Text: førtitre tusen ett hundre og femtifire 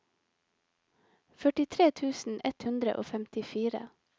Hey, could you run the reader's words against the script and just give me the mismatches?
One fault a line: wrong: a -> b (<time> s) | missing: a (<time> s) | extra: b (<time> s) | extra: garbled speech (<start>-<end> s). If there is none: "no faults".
no faults